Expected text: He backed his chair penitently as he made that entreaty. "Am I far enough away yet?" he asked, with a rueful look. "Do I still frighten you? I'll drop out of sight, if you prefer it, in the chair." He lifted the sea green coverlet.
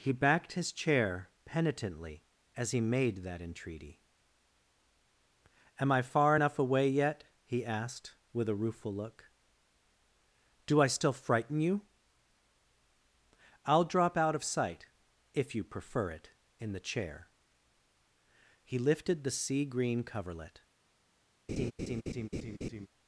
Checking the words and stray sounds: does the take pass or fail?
fail